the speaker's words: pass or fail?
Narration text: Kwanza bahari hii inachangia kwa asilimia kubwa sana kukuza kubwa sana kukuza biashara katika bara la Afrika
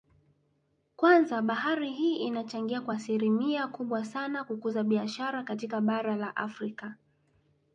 fail